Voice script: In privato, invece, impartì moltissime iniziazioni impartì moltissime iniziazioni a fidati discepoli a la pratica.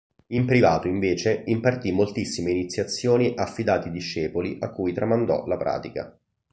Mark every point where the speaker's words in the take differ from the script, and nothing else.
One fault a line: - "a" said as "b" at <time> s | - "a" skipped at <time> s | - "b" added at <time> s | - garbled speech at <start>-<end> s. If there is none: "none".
- "impartì moltissime iniziazioni" skipped at 3.4 s
- "cui tramandò" added at 4.7 s